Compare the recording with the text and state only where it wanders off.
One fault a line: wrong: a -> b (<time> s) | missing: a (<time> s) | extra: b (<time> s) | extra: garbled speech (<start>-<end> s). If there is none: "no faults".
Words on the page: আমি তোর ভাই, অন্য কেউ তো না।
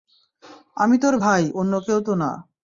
no faults